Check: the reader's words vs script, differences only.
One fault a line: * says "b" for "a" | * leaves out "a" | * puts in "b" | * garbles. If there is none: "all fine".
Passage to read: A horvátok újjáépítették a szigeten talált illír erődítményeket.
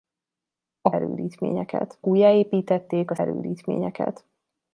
* says "erődítményeket" for "horvátok"
* leaves out "szigeten talált illír"